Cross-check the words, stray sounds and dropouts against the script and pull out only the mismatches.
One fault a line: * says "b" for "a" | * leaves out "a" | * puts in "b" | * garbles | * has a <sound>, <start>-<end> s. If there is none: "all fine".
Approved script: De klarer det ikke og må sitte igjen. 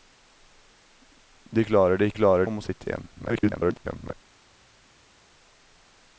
* says "klarer" for "ikke"
* garbles